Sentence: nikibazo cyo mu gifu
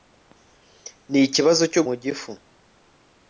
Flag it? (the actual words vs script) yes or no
no